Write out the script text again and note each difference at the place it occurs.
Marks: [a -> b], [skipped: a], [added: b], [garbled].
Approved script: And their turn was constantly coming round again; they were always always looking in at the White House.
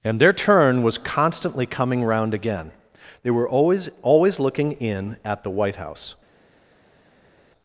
And their turn was constantly coming round again; they were always always looking in at the White House.